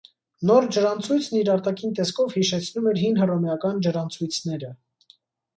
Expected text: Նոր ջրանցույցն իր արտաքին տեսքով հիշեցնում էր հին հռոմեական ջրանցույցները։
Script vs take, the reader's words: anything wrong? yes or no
no